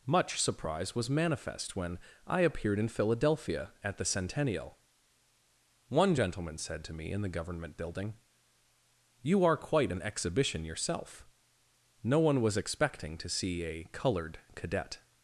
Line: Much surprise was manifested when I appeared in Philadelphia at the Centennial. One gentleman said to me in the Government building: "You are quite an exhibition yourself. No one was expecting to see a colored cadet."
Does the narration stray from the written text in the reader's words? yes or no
yes